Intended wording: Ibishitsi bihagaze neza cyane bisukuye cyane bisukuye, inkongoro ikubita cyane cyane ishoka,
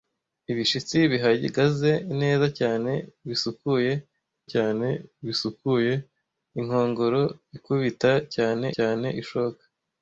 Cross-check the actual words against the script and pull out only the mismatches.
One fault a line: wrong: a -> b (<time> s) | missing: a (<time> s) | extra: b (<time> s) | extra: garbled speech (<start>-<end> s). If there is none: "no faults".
no faults